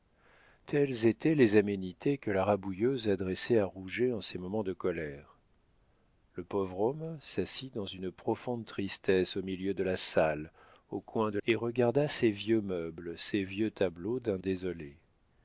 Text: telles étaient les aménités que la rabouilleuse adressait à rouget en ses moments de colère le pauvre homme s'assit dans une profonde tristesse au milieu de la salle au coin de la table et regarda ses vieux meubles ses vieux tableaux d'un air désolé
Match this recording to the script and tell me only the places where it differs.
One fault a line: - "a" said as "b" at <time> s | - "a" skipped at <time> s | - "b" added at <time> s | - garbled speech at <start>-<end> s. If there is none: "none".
- "la table" skipped at 11.4 s
- "air" skipped at 14.4 s